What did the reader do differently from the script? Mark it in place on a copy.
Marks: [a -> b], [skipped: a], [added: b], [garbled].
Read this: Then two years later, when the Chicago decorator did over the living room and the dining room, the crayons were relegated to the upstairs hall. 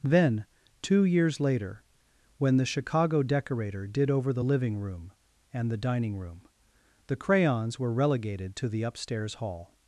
Then two years later, when the Chicago decorator did over the living room and the dining room, the crayons were relegated to the upstairs hall.